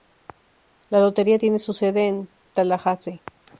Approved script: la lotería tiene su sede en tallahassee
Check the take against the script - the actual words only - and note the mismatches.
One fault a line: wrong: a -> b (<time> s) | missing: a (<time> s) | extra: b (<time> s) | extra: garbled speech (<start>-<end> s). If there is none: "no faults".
no faults